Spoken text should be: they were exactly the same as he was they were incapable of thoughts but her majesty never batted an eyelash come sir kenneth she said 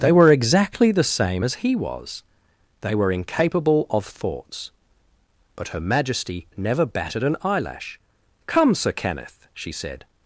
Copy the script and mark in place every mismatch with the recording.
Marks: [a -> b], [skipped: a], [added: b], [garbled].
they were exactly the same as he was they were incapable of thoughts but her majesty never batted an eyelash come sir kenneth she said